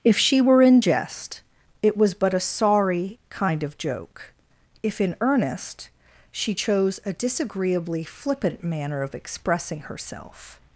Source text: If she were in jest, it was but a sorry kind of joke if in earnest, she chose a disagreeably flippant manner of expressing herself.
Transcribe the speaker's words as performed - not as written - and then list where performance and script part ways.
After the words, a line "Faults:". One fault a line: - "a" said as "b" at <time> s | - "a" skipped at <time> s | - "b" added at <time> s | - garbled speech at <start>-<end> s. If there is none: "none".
If she were in jest, it was but a sorry kind of joke if in earnest, she chose a disagreeably flippant manner of expressing herself.
Faults:
none